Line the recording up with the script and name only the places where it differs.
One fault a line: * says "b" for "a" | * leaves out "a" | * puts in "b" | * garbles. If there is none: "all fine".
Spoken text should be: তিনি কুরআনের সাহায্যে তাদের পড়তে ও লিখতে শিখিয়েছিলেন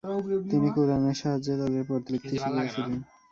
* leaves out "ও"